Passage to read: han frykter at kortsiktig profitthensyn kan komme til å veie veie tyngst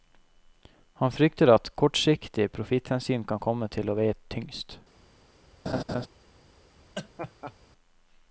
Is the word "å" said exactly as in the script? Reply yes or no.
yes